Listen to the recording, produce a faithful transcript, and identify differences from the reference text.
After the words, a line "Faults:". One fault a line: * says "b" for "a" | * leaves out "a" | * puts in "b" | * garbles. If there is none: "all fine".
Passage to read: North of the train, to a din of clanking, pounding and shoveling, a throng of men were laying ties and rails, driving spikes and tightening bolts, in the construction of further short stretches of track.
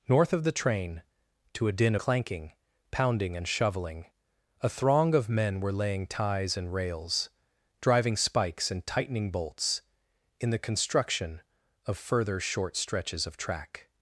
North of the train, to a din clanking, pounding and shoveling, a throng of men were laying ties and rails, driving spikes and tightening bolts, in the construction of further short stretches of track.
Faults:
* leaves out "of"